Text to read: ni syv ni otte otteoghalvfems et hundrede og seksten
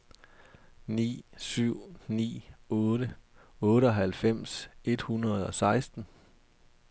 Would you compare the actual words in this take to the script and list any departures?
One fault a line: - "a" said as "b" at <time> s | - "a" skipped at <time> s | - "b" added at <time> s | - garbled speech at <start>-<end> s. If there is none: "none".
none